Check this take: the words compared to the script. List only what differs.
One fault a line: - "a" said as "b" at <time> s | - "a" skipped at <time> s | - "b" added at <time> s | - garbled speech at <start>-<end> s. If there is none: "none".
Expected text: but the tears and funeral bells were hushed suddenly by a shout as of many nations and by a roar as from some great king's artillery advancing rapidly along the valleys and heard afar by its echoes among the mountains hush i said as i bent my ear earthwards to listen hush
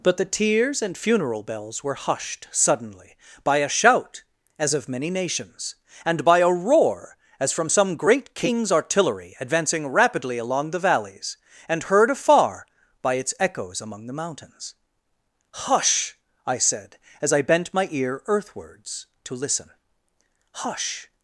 none